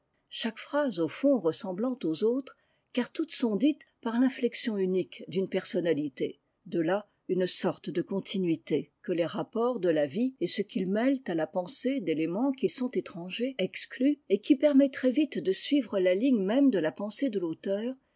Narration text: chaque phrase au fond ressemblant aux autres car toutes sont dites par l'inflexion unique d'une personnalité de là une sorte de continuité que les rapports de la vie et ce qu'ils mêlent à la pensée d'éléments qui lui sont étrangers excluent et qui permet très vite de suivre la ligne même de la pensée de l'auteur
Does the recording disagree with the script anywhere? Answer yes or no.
yes